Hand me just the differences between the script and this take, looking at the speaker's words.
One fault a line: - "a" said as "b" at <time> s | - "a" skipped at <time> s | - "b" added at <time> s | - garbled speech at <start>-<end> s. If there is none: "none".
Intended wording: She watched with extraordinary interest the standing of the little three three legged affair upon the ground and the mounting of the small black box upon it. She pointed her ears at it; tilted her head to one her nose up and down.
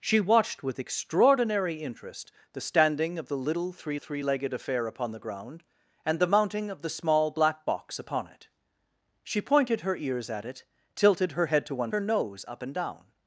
none